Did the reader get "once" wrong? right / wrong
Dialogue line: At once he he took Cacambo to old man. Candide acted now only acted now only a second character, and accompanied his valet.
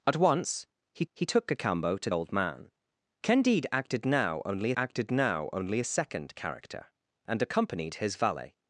right